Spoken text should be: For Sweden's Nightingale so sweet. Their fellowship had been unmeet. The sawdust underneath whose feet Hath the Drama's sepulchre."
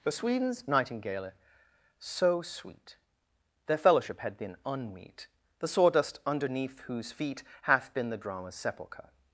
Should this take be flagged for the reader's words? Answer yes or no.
yes